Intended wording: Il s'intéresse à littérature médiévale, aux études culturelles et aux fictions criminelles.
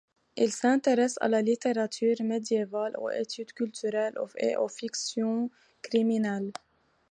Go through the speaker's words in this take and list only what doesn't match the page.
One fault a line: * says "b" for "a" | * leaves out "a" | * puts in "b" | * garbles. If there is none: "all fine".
* puts in "la"